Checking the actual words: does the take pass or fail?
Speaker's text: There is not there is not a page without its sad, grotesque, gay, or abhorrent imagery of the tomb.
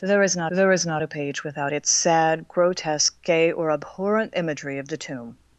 pass